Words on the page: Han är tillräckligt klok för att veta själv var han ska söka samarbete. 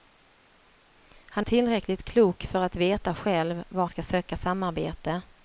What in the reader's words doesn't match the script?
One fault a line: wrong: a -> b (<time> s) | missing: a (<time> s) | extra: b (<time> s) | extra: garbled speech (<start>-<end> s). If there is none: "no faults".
missing: är (1.4 s)
missing: han (3.9 s)